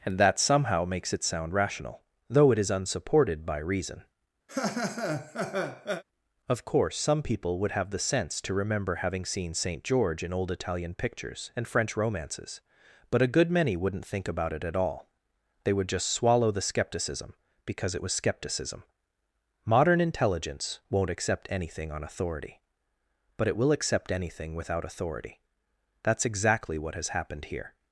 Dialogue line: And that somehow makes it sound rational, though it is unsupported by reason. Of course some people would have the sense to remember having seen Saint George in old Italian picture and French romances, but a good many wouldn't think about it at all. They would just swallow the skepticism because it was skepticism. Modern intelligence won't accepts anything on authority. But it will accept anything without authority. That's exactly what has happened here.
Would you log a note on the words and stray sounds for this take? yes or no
yes